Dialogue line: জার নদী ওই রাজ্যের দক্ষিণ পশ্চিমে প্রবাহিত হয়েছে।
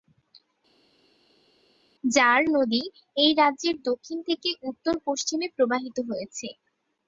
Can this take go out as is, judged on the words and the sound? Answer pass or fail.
fail